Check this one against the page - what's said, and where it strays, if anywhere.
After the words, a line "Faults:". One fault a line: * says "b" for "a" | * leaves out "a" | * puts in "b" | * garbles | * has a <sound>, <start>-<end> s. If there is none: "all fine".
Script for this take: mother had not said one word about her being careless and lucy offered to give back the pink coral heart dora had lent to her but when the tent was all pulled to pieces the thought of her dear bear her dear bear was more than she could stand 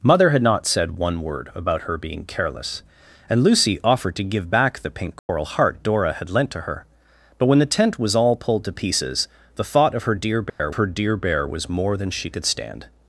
mother had not said one word about her being careless and lucy offered to give back the pink coral heart dora had lent to her but when the tent was all pulled to pieces the thought of her dear bear her dear bear was more than she could stand
Faults:
* has a dropout, 5.2-5.3 s
* has a dropout, 10.5-10.6 s